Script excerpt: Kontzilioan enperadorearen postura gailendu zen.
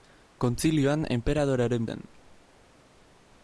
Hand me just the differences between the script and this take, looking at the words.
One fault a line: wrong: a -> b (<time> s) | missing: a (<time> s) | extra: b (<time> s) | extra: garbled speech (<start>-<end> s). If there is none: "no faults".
missing: postura gailendu (1.9 s)